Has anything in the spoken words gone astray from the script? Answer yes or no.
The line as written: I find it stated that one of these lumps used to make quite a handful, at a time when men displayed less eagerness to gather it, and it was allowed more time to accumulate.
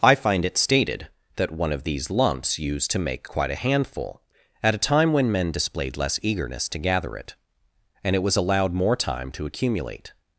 no